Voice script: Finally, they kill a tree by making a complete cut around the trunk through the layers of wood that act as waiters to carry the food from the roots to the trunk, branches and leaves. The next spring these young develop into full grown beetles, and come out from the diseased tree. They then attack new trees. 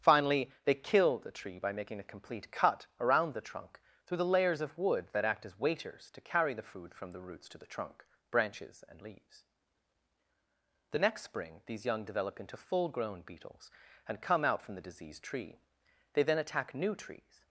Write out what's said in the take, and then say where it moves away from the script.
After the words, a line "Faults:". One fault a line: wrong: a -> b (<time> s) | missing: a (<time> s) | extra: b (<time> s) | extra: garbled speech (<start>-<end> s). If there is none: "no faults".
Finally, they kill the tree by making a complete cut around the trunk through the layers of wood that act as waiters to carry the food from the roots to the trunk, branches and leaves. The next spring these young develop into full grown beetles, and come out from the diseased tree. They then attack new trees.
Faults:
wrong: a -> the (1.2 s)